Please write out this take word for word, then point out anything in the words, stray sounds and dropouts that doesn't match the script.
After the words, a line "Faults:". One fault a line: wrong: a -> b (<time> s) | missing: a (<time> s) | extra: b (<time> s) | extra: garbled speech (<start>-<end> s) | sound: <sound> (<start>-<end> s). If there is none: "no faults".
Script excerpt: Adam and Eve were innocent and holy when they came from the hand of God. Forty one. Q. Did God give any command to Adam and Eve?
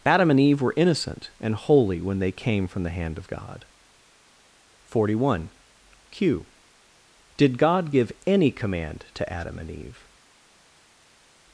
Adam and Eve were innocent and holy when they came from the hand of God. Forty one. Q. Did God give any command to Adam and Eve?
Faults:
no faults